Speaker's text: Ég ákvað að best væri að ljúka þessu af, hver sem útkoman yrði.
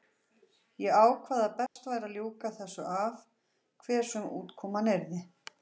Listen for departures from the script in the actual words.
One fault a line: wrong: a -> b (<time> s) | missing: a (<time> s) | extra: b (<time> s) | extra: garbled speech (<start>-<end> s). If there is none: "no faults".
no faults